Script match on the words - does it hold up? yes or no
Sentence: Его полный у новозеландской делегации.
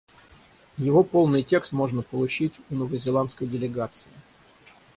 no